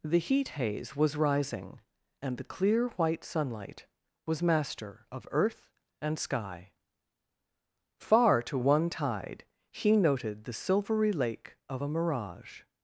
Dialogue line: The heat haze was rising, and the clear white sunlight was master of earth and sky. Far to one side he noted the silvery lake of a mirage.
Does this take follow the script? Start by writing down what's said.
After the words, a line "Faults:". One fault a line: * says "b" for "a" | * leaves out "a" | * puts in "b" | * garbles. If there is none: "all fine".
The heat haze was rising, and the clear white sunlight was master of earth and sky. Far to one tide he noted the silvery lake of a mirage.
Faults:
* says "tide" for "side"